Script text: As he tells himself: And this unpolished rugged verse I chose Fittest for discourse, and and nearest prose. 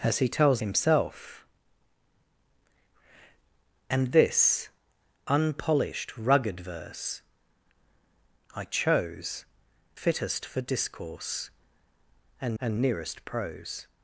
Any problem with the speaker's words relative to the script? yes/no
no